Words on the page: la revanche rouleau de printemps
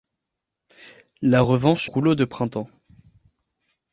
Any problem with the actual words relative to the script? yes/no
no